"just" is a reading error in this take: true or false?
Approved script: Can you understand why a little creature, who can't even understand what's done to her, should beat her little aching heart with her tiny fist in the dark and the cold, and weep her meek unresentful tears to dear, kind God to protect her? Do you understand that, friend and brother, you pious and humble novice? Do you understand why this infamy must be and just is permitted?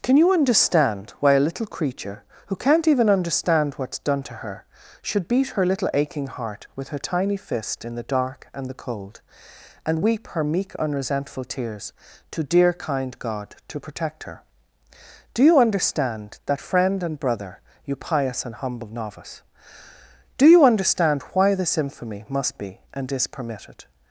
true